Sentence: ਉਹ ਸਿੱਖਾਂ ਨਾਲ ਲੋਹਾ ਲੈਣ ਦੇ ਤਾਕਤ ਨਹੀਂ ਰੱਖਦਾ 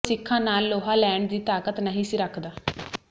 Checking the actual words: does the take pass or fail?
fail